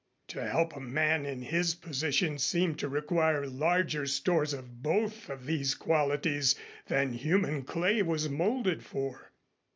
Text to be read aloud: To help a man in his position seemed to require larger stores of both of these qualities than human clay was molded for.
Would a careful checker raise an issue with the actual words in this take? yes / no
no